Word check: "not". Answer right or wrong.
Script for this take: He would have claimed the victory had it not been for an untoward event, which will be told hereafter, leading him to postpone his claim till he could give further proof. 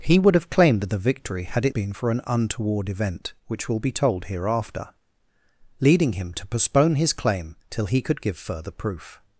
wrong